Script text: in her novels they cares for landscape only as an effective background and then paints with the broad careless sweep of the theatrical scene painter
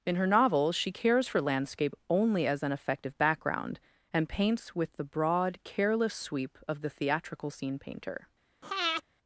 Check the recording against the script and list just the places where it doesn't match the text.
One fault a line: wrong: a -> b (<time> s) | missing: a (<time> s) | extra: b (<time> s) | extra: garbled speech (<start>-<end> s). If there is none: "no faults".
wrong: they -> she (0.8 s)
missing: then (4.3 s)